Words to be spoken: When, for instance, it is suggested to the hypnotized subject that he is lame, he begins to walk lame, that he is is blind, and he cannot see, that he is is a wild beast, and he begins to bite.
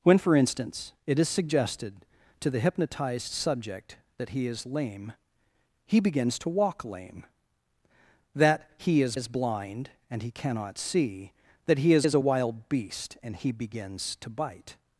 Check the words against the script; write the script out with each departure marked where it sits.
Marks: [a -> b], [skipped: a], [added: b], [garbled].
When, for instance, it is suggested to the hypnotized subject that he is lame, he begins to walk lame, that he is is blind, and he cannot see, that he is is a wild beast, and he begins to bite.